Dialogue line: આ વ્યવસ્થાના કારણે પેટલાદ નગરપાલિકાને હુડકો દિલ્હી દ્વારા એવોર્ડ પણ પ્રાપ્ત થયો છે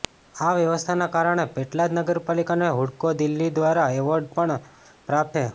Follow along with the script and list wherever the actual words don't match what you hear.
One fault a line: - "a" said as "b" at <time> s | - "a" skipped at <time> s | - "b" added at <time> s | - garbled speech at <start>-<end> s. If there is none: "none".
- "થયો" skipped at 5.4 s